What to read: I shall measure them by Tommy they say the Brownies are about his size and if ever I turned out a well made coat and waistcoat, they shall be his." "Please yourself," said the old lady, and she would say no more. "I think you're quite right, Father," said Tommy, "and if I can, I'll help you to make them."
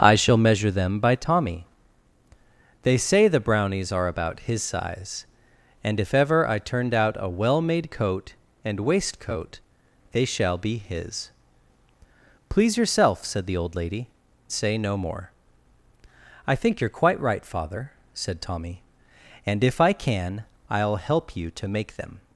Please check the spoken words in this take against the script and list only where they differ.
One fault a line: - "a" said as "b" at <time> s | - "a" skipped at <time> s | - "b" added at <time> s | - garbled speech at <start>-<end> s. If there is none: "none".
- "and she would" skipped at 14.1 s